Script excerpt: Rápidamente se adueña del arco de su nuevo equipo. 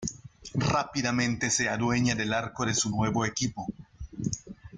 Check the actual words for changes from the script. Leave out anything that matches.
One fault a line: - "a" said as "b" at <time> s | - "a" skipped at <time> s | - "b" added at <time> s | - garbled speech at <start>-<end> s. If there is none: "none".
none